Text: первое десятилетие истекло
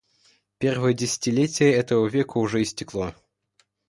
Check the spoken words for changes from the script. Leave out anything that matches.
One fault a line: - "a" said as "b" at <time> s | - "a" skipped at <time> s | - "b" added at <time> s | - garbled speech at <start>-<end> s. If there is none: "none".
- "этого века уже" added at 1.7 s